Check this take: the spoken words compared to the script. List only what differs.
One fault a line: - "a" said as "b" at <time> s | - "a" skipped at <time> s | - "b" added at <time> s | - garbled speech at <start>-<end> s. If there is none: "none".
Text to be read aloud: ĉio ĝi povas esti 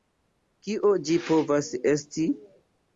- "ĉio" said as "kio" at 0.7 s